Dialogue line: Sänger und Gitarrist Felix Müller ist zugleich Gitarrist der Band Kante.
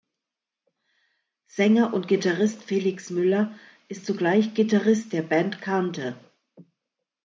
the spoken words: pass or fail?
pass